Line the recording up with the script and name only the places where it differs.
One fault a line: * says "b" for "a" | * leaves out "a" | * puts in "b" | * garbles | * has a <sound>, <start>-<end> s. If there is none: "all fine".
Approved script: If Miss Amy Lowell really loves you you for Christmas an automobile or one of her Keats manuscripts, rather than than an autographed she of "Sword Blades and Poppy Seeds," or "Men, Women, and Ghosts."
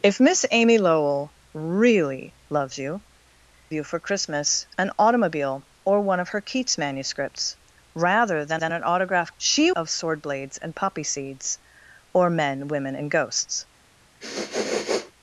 * has a sniff, 14.2-15.1 s